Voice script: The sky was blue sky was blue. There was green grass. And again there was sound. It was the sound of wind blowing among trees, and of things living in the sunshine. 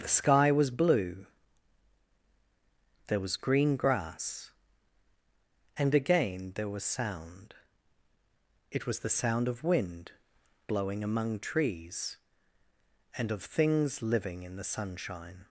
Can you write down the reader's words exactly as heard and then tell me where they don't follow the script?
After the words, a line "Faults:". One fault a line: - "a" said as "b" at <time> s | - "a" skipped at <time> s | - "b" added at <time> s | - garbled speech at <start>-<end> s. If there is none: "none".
The sky was blue. There was green grass. And again there was sound. It was the sound of wind blowing among trees, and of things living in the sunshine.
Faults:
- "sky was blue" skipped at 1.3 s